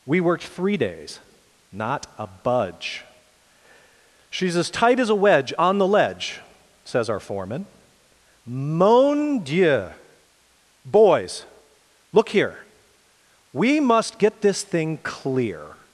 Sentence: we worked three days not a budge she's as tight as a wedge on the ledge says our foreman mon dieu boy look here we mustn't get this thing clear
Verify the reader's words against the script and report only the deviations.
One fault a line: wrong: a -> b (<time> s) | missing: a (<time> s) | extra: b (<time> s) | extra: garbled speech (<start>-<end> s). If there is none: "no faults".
wrong: boy -> boys (10.9 s)
wrong: mustn't -> must (13.8 s)